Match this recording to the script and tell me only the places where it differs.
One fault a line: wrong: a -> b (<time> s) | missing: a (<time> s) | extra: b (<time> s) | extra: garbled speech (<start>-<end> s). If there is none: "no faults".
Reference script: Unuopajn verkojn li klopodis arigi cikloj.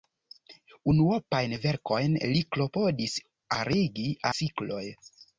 no faults